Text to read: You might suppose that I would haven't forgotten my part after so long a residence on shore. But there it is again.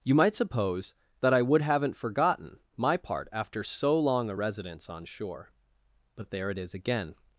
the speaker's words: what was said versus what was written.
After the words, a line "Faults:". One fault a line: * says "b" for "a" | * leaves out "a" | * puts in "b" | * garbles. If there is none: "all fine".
You might suppose that I would haven't forgotten my part after so long a residence on shore. But there it is again.
Faults:
all fine